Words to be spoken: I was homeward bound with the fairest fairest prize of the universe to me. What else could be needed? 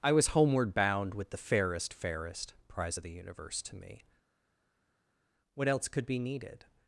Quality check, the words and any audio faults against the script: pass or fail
pass